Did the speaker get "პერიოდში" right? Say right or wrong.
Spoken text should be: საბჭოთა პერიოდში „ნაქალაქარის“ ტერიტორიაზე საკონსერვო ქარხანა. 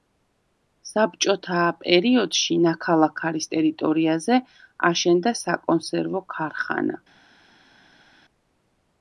right